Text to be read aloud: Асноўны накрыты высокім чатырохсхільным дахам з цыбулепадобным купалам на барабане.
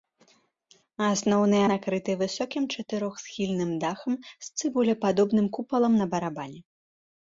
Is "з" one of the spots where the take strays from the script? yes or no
no